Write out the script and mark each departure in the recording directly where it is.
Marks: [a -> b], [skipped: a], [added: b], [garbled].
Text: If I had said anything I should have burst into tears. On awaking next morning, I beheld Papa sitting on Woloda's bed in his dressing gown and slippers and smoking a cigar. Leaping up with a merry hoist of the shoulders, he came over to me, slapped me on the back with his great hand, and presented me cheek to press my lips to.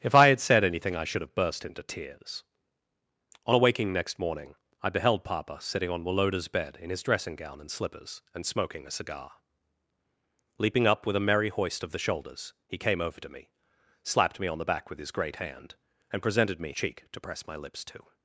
If I had said anything I should have burst into tears. On awaking next morning, I beheld Papa sitting on Woloda's bed in his dressing gown and slippers and smoking a cigar. Leaping up with a merry hoist of the shoulders, he came over to me, slapped me on the back with his great hand, and presented me cheek to press my lips to.